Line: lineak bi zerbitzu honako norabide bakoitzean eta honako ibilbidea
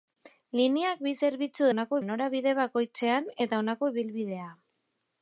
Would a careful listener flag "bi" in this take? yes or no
no